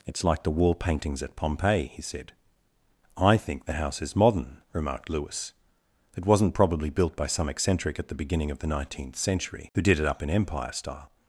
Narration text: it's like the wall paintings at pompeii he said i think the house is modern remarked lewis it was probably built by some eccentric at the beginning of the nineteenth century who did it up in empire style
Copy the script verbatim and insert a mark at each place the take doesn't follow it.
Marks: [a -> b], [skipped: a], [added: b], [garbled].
it's like the wall paintings at pompeii he said i think the house is modern remarked lewis it [was -> wasn't] probably built by some eccentric at the beginning of the nineteenth century who did it up in empire style